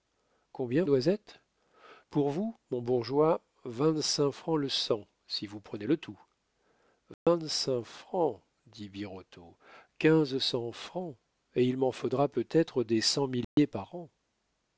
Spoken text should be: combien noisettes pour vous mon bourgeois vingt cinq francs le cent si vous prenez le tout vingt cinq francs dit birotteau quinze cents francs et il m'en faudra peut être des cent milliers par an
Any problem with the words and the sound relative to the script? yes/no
yes